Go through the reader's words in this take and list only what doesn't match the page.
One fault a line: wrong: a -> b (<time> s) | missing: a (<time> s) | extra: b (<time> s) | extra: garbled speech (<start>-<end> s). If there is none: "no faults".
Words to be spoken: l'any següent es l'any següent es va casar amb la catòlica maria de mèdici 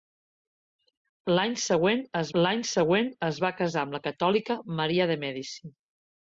no faults